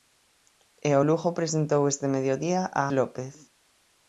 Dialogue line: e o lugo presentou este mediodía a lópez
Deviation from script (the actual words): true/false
false